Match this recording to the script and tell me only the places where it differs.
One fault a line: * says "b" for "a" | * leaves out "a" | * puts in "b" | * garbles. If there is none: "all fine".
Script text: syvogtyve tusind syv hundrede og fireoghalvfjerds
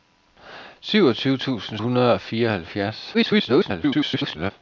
* leaves out "syv"
* garbles